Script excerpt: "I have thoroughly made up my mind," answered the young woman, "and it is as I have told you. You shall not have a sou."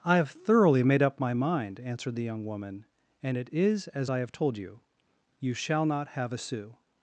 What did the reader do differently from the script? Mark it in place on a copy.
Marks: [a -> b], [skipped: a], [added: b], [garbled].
"I have thoroughly made up my mind," answered the young woman, "and it is as I have told you. You shall not have a sou."